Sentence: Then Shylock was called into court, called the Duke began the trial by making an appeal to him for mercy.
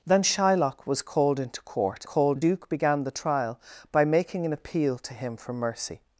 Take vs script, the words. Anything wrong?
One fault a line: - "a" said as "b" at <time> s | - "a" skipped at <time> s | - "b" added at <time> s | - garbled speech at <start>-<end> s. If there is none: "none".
none